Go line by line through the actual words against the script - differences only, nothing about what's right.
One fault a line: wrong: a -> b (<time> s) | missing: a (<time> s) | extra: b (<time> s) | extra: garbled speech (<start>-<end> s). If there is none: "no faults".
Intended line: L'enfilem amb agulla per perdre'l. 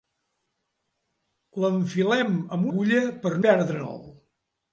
no faults